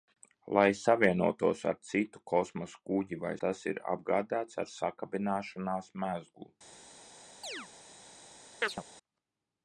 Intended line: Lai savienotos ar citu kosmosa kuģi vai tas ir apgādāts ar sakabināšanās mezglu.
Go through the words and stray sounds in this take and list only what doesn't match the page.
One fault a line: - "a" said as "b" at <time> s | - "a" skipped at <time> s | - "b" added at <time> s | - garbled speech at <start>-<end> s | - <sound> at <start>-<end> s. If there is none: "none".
- chirp at 7.4-7.7 s
- chirp at 8.6-8.8 s